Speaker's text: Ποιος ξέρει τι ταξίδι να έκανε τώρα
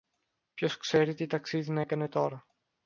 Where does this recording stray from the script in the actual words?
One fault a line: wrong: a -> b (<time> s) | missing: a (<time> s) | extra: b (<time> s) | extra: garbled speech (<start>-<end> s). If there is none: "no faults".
no faults